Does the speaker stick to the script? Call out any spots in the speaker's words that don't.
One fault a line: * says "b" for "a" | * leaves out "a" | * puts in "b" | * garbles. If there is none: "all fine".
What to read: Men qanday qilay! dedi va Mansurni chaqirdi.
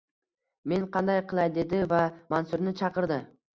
all fine